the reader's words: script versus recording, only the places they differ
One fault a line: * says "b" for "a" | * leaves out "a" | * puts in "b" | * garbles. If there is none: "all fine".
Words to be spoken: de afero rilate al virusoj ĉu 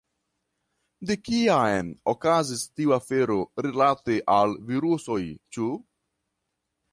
* puts in "kiam okazis tiu"